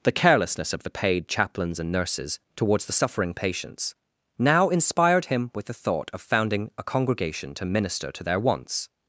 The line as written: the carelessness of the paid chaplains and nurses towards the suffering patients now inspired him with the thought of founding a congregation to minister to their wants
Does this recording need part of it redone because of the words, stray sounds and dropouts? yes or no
no